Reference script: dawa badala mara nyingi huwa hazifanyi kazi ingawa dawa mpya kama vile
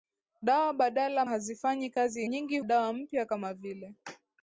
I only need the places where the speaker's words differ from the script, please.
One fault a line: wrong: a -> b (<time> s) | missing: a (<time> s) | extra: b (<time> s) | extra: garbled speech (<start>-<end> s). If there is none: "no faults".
missing: mara nyingi huwa (1.2 s)
wrong: ingawa -> nyingi (2.3 s)